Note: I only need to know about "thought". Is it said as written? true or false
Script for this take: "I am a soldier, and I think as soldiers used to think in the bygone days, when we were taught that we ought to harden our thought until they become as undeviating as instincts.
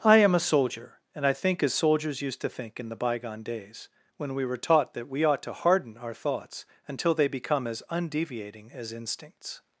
false